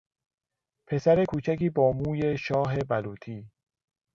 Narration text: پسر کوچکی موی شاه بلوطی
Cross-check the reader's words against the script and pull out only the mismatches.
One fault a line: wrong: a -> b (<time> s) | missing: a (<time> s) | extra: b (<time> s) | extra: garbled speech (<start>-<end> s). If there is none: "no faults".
extra: با (1.7 s)